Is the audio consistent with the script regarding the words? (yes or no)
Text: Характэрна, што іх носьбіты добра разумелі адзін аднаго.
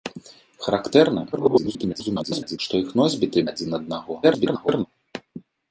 no